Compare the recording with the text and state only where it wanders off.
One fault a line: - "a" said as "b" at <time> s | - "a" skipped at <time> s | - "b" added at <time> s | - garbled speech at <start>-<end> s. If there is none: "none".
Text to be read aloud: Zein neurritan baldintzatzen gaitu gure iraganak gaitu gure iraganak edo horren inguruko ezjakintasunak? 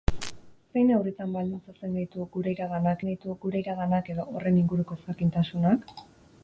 none